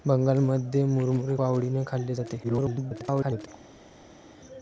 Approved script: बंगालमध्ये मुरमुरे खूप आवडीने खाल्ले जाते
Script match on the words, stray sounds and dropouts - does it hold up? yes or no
no